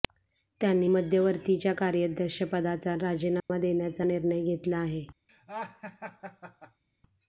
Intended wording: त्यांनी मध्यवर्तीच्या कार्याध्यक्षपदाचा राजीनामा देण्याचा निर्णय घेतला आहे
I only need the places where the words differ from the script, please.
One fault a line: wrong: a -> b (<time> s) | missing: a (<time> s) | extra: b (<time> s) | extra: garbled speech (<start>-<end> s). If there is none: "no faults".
no faults